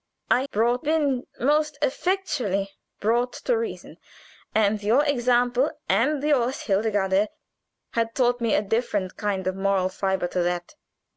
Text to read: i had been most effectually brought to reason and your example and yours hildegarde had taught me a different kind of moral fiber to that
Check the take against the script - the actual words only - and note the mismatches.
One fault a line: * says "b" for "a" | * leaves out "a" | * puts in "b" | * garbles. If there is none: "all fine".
* says "brought" for "had"